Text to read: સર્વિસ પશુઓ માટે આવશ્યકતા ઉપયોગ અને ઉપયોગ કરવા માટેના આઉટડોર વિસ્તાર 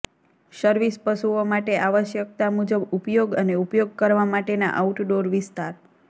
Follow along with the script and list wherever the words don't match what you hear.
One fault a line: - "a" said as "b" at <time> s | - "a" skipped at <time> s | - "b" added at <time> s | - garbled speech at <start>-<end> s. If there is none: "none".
- "મુજબ" added at 2.5 s